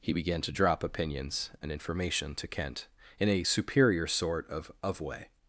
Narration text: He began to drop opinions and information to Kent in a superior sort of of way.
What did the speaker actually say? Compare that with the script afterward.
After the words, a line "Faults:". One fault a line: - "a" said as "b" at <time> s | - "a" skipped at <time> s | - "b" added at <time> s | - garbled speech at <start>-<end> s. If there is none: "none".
He began to drop opinions and information to Kent in a superior sort of of way.
Faults:
none